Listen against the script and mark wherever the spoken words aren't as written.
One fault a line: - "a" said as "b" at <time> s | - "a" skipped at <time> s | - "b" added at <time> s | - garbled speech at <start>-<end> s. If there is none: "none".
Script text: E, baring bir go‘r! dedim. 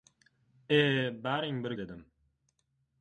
- "go‘r" skipped at 1.7 s